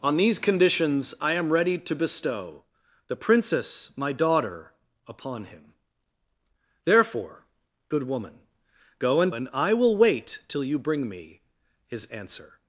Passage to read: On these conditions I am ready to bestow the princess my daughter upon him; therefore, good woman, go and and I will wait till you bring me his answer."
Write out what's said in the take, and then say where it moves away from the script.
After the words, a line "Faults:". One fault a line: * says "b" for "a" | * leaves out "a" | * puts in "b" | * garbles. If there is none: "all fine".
On these conditions I am ready to bestow the princess my daughter upon him; therefore, good woman, go and and I will wait till you bring me his answer."
Faults:
all fine